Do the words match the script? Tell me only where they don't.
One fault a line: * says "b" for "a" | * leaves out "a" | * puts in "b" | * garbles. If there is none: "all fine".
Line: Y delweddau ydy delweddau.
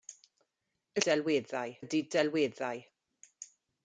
all fine